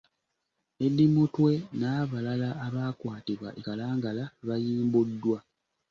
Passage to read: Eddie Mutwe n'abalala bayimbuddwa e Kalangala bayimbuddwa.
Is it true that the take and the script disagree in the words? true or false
true